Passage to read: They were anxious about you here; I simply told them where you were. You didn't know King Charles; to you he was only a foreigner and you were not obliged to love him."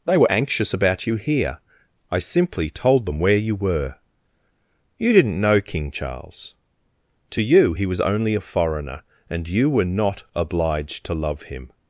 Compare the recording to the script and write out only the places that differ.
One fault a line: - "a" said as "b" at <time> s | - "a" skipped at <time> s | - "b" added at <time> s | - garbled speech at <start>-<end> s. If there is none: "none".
none